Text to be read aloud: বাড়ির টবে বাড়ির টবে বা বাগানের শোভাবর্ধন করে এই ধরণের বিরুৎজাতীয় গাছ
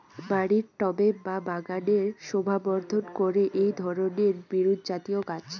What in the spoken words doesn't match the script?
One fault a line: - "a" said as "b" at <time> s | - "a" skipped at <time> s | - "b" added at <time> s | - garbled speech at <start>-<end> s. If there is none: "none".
- "বাড়ির টবে" skipped at 1.1 s